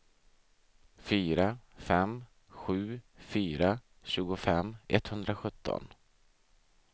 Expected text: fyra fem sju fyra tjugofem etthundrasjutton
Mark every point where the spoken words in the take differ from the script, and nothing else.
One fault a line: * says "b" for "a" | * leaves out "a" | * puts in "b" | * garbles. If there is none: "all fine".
all fine